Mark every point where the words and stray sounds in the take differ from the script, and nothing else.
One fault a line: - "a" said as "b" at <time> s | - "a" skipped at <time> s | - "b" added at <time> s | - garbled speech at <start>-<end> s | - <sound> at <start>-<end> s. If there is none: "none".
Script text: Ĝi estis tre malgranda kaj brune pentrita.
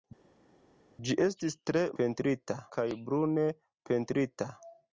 - "malgranda" said as "pentrita" at 2.0 s